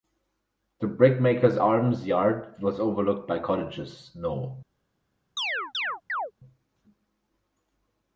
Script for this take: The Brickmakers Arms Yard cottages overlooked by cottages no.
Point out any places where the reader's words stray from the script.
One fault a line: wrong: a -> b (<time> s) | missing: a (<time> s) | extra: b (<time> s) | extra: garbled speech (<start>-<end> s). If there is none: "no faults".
wrong: cottages -> was (2.6 s)